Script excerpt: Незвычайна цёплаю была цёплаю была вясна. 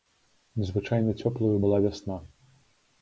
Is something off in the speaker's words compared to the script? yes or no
yes